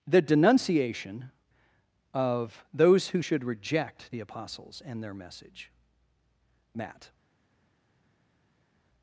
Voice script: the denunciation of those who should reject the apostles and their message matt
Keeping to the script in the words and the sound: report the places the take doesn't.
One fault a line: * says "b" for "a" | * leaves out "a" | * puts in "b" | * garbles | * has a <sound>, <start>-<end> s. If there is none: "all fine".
all fine